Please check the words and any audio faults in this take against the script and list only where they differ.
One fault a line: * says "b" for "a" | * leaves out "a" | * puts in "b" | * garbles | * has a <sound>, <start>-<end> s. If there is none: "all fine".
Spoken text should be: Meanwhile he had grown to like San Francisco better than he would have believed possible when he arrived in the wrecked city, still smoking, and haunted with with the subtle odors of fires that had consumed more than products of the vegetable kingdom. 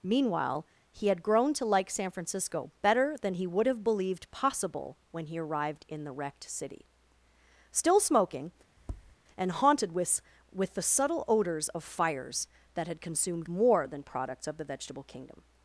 * has a tap, 8.8-9.2 s